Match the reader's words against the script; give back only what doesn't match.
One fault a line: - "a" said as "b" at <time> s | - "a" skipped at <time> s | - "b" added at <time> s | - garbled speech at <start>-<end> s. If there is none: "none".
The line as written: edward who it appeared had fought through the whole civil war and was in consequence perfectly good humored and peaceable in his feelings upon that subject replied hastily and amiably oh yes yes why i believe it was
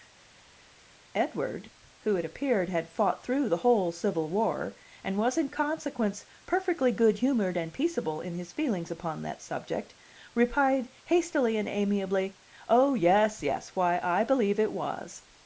none